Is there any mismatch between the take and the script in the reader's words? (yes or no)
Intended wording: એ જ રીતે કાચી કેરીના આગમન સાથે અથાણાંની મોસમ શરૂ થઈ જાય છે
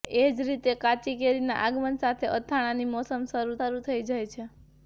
yes